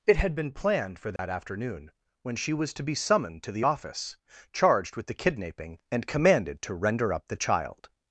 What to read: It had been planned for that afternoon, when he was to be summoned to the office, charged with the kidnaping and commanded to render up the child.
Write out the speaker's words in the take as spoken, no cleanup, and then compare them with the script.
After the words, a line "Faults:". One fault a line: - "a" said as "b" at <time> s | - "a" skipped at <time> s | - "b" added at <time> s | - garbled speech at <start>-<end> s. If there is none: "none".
It had been planned for that afternoon, when she was to be summoned to the office, charged with the kidnaping and commanded to render up the child.
Faults:
- "he" said as "she" at 2.4 s